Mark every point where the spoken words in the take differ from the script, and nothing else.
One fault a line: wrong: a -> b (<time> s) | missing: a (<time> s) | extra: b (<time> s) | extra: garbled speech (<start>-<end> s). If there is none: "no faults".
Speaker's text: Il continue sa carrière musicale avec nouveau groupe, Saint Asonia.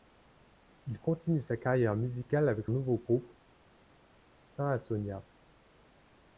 no faults